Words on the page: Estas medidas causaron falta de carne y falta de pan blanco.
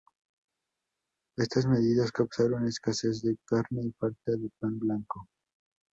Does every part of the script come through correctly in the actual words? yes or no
no